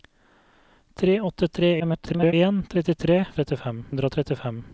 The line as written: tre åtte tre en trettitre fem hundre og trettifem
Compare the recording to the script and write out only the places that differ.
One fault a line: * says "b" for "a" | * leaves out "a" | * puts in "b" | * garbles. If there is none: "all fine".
* garbles
* says "trettifem" for "fem"